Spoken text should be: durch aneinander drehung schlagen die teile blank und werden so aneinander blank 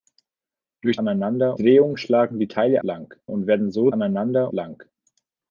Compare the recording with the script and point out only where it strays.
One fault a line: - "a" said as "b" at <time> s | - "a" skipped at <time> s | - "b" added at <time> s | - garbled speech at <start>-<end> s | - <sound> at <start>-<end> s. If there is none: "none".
none